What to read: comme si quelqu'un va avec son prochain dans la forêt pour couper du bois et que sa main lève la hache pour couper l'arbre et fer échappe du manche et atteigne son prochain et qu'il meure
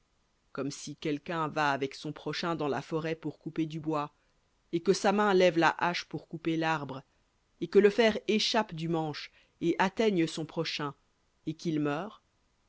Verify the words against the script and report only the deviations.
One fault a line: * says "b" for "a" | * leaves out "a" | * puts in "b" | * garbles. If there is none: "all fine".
* puts in "que le"